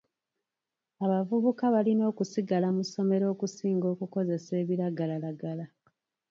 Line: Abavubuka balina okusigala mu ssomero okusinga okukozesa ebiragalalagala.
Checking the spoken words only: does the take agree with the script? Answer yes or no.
yes